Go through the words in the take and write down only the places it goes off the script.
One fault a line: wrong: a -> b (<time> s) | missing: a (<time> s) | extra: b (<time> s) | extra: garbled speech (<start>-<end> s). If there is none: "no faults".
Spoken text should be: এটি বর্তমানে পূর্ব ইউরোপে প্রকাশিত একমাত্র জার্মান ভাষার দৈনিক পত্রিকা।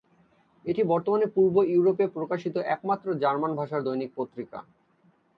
no faults